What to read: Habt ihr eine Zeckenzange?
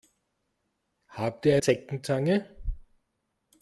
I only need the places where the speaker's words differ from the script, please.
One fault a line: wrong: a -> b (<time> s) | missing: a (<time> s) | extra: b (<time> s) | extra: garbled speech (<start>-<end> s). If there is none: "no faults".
missing: eine (1.6 s)